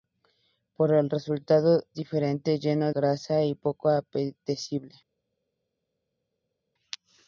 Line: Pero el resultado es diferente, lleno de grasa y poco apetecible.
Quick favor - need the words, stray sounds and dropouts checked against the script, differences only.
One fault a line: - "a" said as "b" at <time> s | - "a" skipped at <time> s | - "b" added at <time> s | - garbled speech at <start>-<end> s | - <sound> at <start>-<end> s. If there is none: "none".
- "es" skipped at 1.8 s
- "de" skipped at 2.9 s